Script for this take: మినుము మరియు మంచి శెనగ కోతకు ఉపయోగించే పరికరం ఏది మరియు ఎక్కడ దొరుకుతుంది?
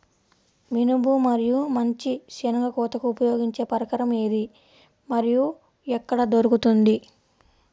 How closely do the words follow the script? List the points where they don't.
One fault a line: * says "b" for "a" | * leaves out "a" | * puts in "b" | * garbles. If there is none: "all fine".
all fine